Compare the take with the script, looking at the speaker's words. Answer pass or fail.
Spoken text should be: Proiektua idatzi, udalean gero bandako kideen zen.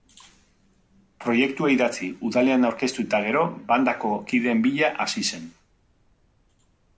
fail